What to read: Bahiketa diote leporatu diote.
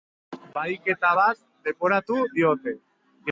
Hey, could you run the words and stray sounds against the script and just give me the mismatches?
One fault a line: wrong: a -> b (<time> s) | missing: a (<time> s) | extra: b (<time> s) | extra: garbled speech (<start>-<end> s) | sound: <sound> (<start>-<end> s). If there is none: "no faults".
wrong: diote -> bat (1.2 s)